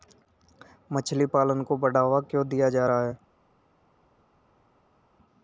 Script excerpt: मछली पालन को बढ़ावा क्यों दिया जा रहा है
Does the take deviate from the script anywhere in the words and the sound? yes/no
no